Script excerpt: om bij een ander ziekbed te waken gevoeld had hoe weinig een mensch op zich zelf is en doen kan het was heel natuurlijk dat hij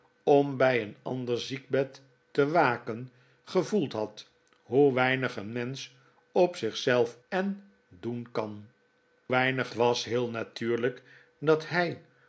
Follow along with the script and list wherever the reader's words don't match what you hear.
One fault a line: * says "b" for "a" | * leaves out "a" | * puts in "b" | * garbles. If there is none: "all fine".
* leaves out "is"
* says "weinig" for "het"